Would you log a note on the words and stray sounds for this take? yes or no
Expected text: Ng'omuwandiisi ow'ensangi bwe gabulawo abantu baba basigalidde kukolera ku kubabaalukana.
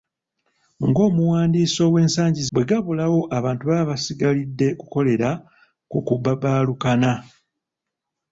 no